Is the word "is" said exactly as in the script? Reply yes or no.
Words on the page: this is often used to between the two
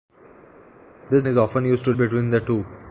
yes